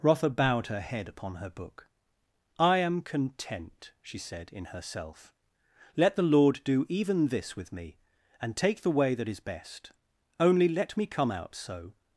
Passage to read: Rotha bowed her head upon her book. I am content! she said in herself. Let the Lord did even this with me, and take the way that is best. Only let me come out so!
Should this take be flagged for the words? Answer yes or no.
yes